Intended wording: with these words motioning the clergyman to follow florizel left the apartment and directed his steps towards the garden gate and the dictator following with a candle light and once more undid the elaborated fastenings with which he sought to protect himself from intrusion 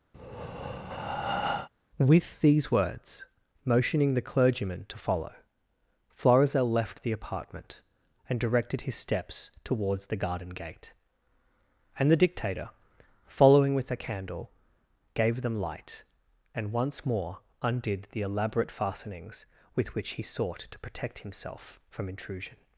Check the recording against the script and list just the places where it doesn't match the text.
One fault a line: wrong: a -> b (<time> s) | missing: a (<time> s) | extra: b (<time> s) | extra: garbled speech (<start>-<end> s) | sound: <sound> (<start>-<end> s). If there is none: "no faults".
sound: breath (0.1-1.7 s)
extra: gave them (15.1 s)
wrong: elaborated -> elaborate (18.2 s)